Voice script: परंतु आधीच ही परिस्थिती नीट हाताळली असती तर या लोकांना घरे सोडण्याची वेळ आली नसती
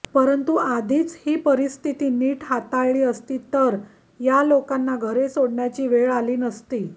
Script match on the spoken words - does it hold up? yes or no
yes